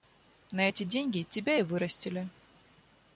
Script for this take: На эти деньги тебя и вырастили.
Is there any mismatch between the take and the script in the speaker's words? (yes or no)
no